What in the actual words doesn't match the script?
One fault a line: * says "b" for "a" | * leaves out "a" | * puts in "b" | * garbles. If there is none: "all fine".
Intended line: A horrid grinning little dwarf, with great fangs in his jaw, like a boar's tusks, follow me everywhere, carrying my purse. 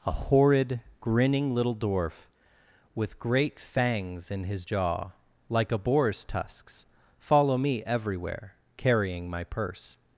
all fine